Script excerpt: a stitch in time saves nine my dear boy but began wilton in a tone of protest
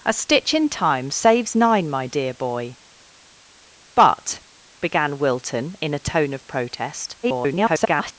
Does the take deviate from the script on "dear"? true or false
false